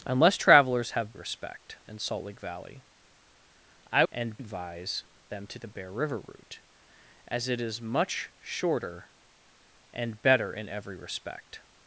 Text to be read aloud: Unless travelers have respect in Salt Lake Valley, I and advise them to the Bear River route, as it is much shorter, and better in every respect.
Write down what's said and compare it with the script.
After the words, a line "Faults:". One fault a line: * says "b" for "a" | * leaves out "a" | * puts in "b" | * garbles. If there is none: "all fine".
Unless travelers have respect in Salt Lake Valley, I and advise them to the Bear River route, as it is much shorter, and better in every respect.
Faults:
all fine